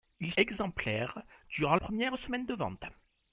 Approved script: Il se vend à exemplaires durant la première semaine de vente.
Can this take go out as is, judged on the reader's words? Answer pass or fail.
fail